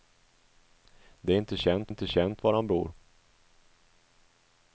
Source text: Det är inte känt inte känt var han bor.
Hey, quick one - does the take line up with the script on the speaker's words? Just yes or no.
yes